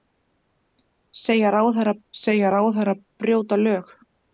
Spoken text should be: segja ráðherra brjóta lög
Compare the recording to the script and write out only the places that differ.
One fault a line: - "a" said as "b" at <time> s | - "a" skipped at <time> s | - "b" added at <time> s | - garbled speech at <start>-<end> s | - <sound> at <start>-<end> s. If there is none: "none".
- "segja ráðherra" added at 2.2 s